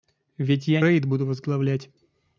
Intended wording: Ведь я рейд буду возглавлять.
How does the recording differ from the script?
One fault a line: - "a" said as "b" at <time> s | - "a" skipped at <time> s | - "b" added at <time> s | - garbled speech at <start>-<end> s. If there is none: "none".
none